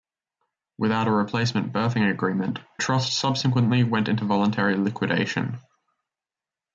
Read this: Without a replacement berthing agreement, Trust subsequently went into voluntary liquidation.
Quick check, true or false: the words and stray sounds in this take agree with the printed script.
true